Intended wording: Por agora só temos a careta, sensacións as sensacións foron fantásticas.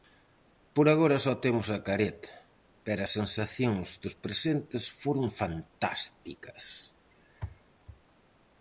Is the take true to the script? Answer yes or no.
no